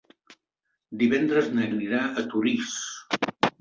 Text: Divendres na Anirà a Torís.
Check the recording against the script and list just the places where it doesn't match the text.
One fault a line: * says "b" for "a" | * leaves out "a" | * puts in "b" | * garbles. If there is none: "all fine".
all fine